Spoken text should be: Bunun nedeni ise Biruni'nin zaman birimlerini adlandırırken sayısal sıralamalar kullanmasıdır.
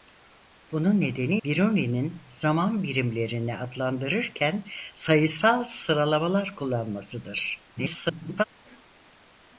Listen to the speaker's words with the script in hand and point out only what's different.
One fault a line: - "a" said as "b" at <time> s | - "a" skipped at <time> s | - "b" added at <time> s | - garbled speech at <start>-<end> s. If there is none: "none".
- "ise" skipped at 1.4 s
- garbled speech at 7.8-8.4 s